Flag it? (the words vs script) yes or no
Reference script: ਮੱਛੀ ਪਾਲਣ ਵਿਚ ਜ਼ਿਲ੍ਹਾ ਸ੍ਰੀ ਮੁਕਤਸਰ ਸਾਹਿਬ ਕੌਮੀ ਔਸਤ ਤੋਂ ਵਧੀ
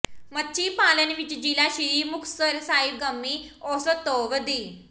no